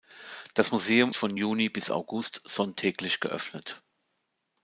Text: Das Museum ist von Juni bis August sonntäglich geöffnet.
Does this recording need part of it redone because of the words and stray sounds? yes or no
yes